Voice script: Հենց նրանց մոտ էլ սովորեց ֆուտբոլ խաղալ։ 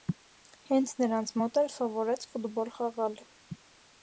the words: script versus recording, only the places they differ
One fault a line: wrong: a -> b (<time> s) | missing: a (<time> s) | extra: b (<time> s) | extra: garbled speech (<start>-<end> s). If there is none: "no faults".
no faults